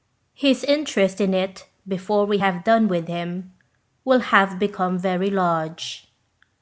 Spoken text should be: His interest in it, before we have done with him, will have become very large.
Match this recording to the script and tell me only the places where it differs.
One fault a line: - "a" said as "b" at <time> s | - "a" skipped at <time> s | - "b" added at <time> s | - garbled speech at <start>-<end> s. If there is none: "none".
none